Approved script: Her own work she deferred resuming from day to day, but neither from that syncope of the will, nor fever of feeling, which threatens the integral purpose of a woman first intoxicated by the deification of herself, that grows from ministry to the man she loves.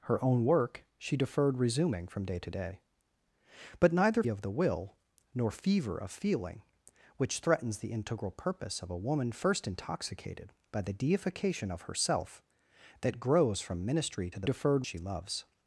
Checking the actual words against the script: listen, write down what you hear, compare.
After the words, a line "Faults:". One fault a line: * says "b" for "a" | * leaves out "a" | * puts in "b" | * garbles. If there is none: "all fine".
Her own work she deferred resuming from day to day, but neither of the will, nor fever of feeling, which threatens the integral purpose of a woman first intoxicated by the deification of herself, that grows from ministry to the deferred she loves.
Faults:
* leaves out "from that syncope"
* says "deferred" for "man"